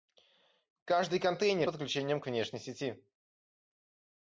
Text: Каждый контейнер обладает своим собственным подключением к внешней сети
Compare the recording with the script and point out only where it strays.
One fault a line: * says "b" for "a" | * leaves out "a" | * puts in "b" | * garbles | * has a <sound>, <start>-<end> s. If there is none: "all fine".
* leaves out "обладает своим собственным"